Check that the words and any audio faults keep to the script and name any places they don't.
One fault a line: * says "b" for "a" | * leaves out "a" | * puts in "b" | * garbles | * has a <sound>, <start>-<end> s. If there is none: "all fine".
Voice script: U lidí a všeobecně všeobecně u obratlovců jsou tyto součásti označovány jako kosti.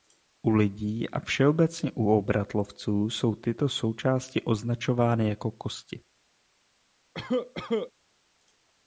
* leaves out "všeobecně"
* has a cough, 7.1-7.9 s